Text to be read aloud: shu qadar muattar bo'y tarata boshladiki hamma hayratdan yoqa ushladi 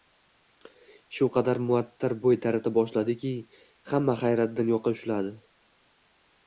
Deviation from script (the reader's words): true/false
false